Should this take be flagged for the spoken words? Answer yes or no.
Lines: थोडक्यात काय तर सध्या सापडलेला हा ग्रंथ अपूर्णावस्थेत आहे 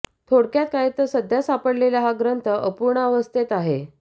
no